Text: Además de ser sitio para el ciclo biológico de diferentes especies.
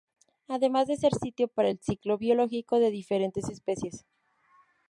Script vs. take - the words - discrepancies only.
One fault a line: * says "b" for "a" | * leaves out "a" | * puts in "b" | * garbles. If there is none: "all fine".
all fine